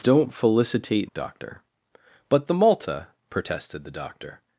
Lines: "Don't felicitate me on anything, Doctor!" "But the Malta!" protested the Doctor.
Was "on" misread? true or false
true